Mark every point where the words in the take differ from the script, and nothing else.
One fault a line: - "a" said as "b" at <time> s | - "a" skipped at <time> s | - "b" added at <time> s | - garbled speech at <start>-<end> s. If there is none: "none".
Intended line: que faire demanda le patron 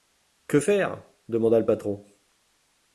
none